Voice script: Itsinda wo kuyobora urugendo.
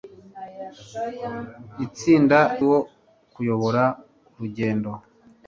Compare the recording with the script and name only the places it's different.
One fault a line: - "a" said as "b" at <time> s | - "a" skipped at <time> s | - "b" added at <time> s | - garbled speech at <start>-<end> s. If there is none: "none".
none